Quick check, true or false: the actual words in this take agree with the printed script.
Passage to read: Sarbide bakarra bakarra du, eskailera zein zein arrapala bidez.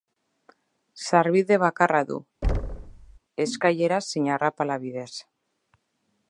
false